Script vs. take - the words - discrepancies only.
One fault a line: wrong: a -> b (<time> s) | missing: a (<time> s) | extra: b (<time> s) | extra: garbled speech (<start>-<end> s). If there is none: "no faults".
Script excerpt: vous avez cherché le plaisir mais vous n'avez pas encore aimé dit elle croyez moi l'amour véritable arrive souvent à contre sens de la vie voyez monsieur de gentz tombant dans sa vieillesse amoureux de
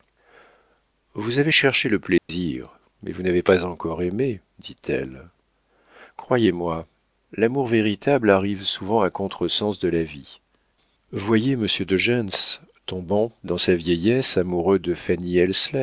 no faults